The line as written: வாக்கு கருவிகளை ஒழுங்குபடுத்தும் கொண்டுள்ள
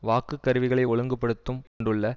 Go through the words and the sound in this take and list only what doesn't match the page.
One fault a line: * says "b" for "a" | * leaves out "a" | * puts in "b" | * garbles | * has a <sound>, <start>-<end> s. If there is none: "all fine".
* has a dropout, 1.7-1.8 s